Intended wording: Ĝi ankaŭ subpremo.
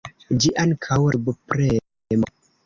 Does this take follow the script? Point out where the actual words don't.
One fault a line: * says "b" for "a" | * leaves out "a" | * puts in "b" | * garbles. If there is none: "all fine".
all fine